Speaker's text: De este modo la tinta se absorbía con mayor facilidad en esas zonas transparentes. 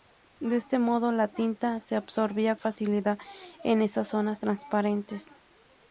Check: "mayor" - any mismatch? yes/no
yes